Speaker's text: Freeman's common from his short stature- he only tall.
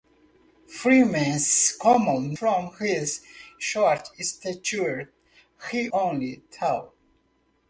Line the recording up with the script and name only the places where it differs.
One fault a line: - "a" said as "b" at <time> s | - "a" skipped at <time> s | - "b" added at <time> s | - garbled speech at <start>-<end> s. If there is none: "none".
none